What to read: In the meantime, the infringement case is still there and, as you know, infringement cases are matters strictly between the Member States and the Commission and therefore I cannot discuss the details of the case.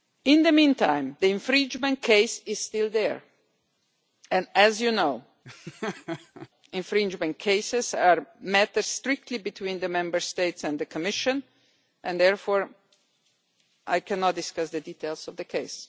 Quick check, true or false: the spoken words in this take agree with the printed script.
true